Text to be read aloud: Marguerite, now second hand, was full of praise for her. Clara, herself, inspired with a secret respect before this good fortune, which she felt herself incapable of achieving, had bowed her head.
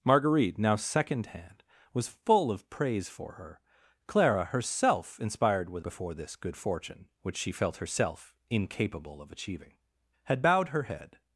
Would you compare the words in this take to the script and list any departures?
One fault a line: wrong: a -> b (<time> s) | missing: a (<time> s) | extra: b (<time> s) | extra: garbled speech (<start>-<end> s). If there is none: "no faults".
missing: a secret respect (5.8 s)